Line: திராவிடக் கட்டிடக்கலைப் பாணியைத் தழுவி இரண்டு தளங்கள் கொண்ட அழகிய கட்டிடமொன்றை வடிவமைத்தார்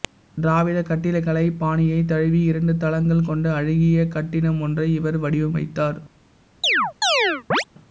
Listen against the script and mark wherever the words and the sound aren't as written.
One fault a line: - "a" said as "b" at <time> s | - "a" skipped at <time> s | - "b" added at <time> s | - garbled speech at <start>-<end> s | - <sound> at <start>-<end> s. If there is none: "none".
- "இவர்" added at 5.0 s
- chirp at 6.6-7.6 s